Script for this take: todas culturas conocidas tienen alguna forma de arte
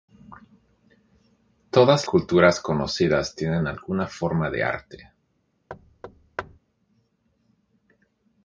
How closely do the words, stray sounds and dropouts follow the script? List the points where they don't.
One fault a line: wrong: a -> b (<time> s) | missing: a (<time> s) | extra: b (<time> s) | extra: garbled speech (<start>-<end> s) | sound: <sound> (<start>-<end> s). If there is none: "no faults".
sound: thud (5.7-6.6 s)